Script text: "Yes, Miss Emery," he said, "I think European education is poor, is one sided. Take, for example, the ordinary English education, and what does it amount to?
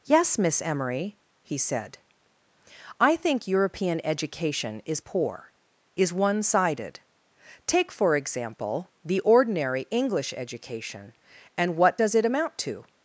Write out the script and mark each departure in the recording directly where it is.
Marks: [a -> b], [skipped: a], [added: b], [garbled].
"Yes, Miss Emery," he said, "I think European education is poor, is one sided. Take, for example, the ordinary English education, and what does it amount to?